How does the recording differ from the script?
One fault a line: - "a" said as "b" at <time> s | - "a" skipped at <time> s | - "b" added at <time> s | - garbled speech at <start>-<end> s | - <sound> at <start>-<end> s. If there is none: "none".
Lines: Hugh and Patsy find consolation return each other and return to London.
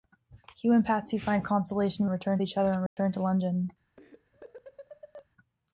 - dropout at 2.9-3.0 s
- laugh at 4.0-5.3 s